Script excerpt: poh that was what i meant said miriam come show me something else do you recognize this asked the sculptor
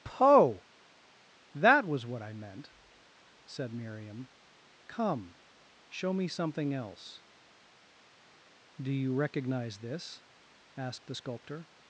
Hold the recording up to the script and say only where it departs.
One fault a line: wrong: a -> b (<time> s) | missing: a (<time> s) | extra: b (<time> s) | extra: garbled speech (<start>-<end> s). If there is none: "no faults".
no faults